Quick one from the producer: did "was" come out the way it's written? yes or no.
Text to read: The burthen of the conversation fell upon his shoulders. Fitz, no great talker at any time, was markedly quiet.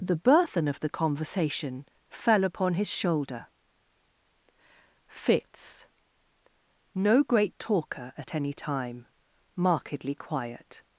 no